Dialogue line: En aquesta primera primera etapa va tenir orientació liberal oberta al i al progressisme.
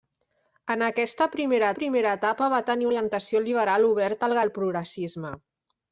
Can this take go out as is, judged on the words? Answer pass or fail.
pass